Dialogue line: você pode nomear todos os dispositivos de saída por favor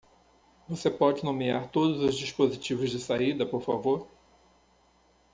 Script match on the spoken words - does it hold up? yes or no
yes